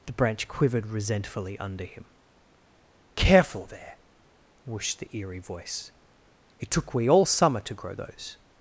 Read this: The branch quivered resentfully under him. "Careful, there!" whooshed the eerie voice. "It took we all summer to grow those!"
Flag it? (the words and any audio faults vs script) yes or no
no